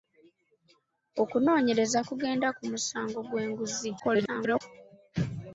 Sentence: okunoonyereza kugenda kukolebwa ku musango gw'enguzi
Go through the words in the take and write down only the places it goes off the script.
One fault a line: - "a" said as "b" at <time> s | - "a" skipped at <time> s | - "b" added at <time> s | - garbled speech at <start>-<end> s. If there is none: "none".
- "kukolebwa" skipped at 2.5 s
- garbled speech at 4.0-4.6 s